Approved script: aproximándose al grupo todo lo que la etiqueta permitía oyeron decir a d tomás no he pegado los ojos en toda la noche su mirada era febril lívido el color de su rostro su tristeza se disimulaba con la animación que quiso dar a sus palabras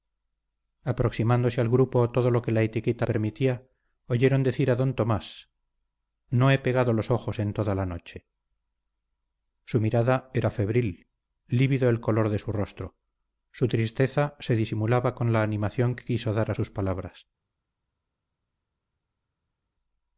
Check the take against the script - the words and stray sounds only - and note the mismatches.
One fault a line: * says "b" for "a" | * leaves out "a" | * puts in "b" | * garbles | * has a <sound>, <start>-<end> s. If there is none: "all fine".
all fine